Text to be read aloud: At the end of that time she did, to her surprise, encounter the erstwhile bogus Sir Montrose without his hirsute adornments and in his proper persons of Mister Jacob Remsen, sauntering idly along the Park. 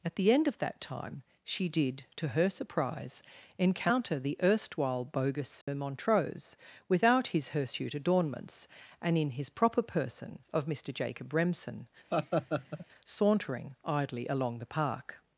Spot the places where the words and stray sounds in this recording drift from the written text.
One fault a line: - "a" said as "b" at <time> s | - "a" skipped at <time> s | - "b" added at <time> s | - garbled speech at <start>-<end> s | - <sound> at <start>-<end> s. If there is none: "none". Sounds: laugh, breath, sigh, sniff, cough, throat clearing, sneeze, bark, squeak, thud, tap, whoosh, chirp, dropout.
- dropout at 5.6-5.7 s
- "persons" said as "person" at 9.8 s
- laugh at 12.1-12.9 s